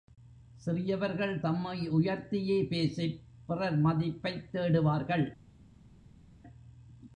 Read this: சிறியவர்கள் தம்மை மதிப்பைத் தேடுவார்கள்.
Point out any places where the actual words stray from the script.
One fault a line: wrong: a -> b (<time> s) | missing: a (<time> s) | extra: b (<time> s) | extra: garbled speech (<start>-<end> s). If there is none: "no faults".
extra: உயர்த்தியே பேசிப் பிறர் (1.9 s)